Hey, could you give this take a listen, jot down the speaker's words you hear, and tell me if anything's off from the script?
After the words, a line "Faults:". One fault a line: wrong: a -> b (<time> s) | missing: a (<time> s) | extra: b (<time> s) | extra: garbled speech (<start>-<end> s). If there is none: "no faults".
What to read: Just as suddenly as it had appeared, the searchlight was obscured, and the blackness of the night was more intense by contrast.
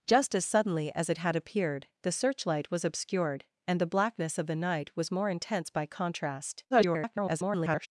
Just as suddenly as it had appeared, the searchlight was obscured, and the blackness of the night was more intense by contrast. [garbled]
Faults:
extra: garbled speech (6.7-7.9 s)